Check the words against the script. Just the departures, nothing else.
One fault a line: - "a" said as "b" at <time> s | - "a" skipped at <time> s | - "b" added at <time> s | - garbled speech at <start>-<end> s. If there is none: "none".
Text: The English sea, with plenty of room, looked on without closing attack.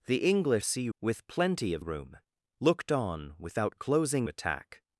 none